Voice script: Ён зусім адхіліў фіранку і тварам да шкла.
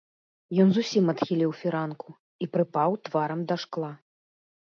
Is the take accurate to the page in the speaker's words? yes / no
no